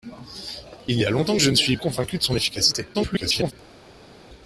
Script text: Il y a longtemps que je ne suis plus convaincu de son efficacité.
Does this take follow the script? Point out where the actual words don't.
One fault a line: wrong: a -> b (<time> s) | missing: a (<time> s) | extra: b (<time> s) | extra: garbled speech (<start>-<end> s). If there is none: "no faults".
missing: plus (1.8 s)
extra: garbled speech (2.9-3.5 s)